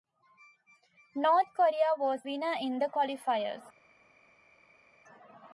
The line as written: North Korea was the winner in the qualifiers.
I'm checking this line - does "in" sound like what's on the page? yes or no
yes